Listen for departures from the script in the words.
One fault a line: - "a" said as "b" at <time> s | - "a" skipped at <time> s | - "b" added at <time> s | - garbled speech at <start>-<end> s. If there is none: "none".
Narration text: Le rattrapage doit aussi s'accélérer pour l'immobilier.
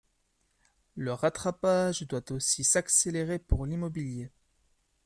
none